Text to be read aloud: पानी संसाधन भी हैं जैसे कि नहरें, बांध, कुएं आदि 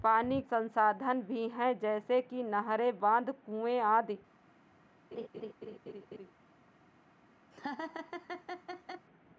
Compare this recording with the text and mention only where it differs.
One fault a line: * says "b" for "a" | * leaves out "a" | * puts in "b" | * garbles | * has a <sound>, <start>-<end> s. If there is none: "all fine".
* has a laugh, 5.1-6.3 s
* has a laugh, 7.5-9.1 s